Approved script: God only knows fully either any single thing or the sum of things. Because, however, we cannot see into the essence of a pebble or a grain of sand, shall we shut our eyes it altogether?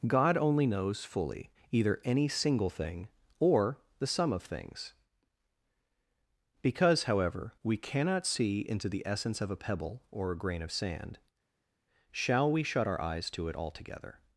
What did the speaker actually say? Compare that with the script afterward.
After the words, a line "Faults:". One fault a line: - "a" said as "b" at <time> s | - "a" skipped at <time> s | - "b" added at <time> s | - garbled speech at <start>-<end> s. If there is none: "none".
God only knows fully either any single thing or the sum of things. Because, however, we cannot see into the essence of a pebble or a grain of sand, shall we shut our eyes to it altogether?
Faults:
- "to" added at 13.3 s